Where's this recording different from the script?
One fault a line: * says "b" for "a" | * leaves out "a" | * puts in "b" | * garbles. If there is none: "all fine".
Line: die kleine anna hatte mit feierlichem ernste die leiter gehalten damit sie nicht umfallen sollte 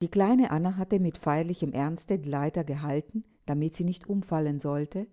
all fine